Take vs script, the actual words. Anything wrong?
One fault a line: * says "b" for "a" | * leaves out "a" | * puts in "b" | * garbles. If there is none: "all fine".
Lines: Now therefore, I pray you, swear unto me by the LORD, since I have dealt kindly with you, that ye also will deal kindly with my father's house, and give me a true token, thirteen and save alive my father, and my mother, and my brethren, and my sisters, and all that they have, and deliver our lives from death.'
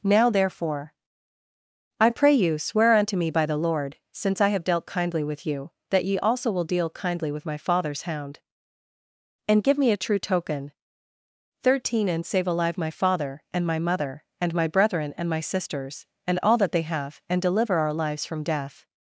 * says "hound" for "house"